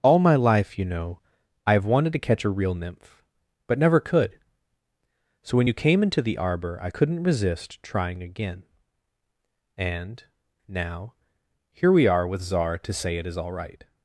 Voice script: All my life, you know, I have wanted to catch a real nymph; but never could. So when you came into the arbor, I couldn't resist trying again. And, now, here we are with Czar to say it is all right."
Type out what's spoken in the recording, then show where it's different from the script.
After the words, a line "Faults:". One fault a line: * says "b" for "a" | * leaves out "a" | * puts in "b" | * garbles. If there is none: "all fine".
All my life, you know, I have wanted to catch a real nymph; but never could. So when you came into the arbor, I couldn't resist trying again. And, now, here we are with Czar to say it is all right."
Faults:
all fine